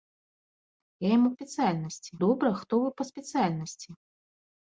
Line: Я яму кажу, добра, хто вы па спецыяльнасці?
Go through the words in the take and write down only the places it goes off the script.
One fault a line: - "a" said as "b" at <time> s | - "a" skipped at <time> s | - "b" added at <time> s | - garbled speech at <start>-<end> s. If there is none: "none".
- "кажу" said as "спецыяльнасці" at 1.3 s